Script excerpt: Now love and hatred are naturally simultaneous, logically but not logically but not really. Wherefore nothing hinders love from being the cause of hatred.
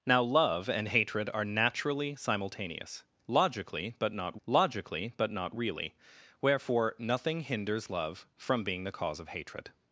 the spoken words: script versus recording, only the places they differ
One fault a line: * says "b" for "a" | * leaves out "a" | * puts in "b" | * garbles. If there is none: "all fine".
all fine